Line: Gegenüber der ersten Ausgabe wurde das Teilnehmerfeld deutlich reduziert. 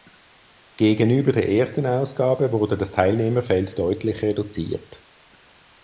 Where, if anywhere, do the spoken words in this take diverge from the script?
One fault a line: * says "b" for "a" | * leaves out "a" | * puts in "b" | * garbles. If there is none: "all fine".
all fine